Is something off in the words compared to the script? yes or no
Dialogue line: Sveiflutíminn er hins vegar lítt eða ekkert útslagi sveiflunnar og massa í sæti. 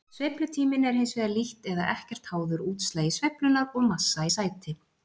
yes